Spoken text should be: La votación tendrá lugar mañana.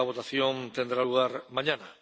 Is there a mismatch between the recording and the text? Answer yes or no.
no